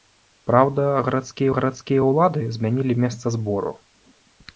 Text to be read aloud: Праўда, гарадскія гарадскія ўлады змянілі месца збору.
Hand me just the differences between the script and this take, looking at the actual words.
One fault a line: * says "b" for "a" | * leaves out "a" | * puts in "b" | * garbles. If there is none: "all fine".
all fine